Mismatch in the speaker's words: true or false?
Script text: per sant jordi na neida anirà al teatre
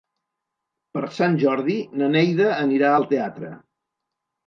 false